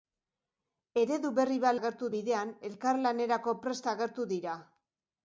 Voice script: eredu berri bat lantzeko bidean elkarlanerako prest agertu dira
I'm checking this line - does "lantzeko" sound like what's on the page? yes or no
no